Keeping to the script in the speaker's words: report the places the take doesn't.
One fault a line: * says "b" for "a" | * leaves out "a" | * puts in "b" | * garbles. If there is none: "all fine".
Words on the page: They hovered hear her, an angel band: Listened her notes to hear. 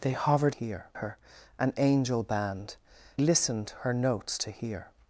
all fine